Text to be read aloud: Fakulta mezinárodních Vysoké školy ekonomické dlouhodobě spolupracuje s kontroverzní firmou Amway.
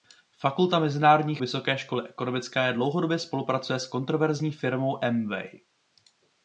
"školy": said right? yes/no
yes